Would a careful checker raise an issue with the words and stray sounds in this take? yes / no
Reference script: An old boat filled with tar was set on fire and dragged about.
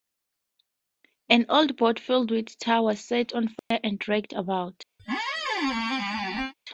yes